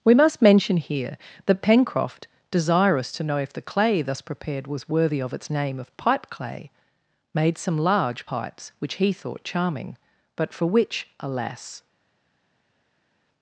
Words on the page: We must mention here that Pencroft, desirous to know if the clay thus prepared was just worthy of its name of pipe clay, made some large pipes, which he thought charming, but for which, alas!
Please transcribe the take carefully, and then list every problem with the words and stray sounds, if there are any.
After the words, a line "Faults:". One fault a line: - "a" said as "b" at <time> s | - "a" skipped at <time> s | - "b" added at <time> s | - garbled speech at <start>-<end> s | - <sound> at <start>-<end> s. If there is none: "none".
We must mention here that Pencroft, desirous to know if the clay thus prepared was worthy of its name of pipe clay, made some large pipes, which he thought charming, but for which, alas!
Faults:
- "just" skipped at 4.9 s